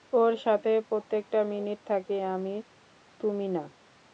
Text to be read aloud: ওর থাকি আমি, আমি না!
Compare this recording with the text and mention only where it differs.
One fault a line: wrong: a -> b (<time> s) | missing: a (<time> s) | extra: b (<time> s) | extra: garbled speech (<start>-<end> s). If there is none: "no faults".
extra: সাথে প্রত্যেকটা মিনিট (0.5 s)
wrong: আমি -> তুমি (3.2 s)